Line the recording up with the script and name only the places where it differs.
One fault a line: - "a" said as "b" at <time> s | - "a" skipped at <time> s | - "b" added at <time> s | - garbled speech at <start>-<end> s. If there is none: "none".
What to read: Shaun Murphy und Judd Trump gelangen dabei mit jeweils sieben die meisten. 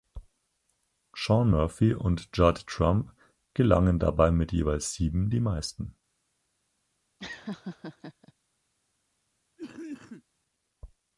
none